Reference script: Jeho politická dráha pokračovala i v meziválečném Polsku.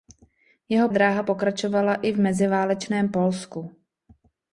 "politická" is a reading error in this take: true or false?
true